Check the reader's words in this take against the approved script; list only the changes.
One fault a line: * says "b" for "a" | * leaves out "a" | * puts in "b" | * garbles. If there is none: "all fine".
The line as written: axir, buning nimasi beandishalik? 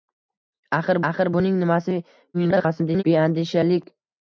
* puts in "axir"
* garbles